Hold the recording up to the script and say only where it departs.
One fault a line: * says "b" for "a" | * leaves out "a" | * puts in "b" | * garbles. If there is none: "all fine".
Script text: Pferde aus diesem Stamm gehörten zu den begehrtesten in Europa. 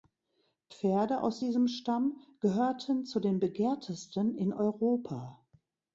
all fine